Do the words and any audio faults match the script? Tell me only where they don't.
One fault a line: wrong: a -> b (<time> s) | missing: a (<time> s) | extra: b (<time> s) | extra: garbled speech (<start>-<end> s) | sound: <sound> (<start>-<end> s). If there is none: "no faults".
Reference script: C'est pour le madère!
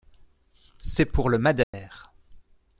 sound: dropout (1.6-1.7 s)